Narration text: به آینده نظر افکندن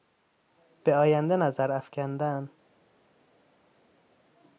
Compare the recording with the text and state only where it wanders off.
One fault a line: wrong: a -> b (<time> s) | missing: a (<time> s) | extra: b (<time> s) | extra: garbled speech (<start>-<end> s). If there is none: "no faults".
no faults